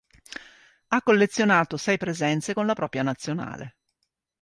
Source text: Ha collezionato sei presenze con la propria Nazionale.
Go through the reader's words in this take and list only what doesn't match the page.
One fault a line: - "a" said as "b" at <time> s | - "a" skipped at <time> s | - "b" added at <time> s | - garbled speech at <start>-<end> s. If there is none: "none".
none